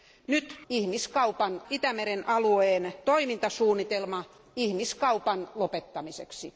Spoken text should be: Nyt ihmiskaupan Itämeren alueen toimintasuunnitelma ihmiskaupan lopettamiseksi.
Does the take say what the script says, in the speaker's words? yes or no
yes